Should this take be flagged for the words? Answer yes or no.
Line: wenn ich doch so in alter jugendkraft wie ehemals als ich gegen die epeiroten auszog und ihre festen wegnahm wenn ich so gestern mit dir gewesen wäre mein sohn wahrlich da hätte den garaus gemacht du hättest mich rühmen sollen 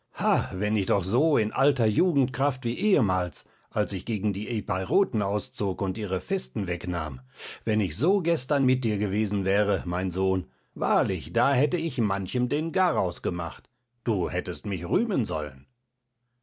yes